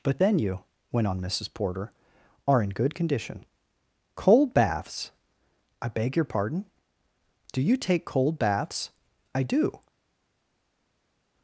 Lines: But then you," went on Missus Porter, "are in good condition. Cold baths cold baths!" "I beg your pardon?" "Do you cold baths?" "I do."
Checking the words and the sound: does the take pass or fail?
fail